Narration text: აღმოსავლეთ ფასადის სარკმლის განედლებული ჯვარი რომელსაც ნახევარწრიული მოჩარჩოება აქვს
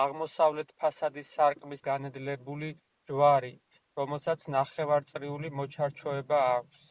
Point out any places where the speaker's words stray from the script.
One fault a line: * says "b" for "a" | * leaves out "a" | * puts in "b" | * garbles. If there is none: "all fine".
all fine